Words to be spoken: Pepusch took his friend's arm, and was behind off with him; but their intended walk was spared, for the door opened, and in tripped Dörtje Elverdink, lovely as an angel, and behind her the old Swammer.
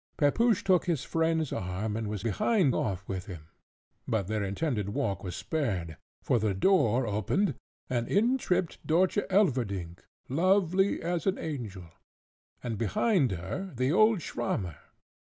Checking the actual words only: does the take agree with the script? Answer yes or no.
yes